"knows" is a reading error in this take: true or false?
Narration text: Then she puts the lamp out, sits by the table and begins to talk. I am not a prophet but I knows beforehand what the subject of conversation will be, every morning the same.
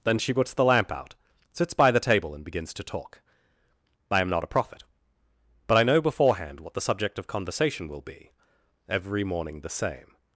true